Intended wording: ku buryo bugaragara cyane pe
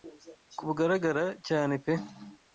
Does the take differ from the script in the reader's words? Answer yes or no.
yes